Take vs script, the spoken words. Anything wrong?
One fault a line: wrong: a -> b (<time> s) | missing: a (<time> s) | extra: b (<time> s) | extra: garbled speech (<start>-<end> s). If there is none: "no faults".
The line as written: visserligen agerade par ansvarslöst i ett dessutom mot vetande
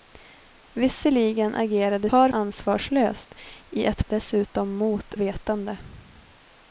no faults